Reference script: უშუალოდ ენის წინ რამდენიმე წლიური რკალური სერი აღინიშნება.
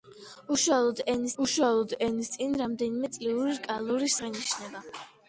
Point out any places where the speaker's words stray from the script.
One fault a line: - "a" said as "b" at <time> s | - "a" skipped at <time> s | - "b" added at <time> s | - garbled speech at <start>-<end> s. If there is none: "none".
- "უშუალოდ ენის" added at 1.4 s
- "სერი" skipped at 4.1 s